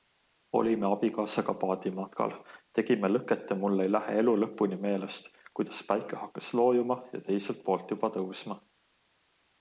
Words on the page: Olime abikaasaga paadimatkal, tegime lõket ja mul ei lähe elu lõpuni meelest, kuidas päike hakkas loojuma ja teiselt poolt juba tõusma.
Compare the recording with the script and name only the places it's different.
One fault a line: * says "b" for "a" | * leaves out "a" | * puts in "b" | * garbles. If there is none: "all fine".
all fine